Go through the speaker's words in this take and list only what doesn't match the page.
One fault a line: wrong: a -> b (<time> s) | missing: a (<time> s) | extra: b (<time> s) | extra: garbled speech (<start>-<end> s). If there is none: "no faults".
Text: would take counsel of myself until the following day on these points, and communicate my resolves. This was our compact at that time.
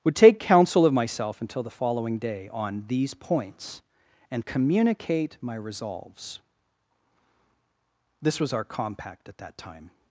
no faults